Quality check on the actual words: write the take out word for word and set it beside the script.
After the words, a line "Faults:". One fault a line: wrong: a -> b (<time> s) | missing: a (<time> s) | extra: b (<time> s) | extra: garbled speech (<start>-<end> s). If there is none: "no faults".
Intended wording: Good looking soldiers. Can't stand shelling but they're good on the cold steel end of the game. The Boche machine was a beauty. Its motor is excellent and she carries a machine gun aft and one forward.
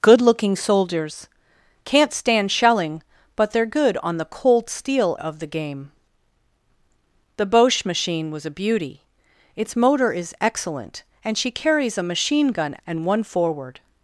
Good looking soldiers. Can't stand shelling but they're good on the cold steel of the game. The Boche machine was a beauty. Its motor is excellent and she carries a machine gun and one forward.
Faults:
missing: end (5.2 s)
missing: aft (12.7 s)